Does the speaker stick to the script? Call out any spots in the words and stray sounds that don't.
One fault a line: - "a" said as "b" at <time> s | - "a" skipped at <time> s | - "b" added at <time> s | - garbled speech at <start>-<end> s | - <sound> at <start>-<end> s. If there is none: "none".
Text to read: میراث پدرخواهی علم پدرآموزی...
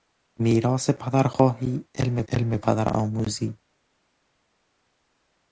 - "علم" added at 2.3 s